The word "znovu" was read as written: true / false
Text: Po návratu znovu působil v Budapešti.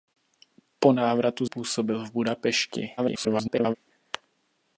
false